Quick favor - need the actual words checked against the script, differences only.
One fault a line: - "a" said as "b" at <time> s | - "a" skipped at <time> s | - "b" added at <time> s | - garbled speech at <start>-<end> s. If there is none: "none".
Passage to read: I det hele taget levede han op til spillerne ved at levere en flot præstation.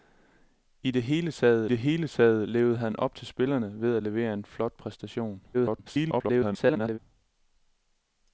- "det hele taget" added at 1.7 s
- garbled speech at 5.5-7.0 s